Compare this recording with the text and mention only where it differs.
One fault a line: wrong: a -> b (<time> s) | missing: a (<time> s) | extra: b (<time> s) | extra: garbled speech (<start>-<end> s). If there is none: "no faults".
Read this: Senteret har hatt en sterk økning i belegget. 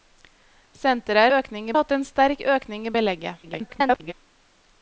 wrong: har -> økning (1.4 s)
extra: garbled speech (3.4-4.1 s)